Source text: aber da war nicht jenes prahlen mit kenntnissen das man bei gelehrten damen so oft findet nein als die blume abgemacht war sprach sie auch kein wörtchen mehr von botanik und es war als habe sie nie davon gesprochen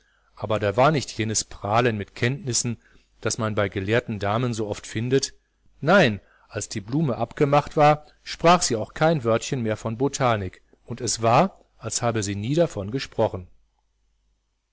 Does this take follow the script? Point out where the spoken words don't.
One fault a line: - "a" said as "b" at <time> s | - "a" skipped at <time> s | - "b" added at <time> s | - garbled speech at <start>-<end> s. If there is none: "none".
none